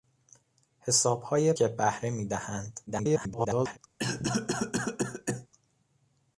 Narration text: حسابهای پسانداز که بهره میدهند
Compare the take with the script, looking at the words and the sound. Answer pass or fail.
fail